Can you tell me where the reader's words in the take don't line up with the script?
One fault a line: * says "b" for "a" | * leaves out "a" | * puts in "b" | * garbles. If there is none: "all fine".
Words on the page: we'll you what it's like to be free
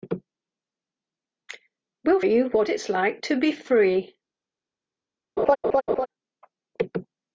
all fine